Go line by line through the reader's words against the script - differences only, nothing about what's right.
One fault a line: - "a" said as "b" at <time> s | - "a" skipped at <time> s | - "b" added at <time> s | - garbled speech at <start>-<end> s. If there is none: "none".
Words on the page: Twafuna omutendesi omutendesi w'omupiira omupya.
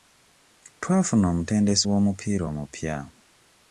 - "omutendesi" skipped at 1.9 s